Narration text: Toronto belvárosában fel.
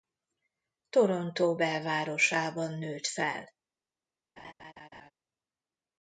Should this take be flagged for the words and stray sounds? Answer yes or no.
yes